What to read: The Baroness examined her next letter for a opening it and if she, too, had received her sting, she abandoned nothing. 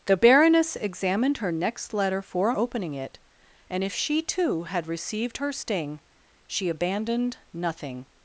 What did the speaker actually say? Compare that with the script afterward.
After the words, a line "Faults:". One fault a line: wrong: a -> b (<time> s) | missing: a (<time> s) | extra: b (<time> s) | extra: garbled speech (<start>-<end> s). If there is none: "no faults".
The Baroness examined her next letter for a opening it and if she, too, had received her sting, she abandoned nothing.
Faults:
no faults